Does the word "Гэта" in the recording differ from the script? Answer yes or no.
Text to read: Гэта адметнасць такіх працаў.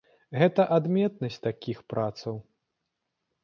no